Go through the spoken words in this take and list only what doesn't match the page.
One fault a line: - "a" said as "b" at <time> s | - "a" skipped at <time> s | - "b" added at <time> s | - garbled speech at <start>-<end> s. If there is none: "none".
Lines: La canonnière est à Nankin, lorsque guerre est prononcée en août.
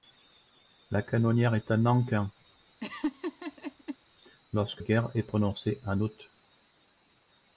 none